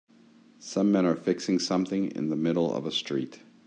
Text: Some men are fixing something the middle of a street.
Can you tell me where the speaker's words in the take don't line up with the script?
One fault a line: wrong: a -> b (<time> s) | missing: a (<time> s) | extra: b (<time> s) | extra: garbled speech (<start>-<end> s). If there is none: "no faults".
extra: in (2.1 s)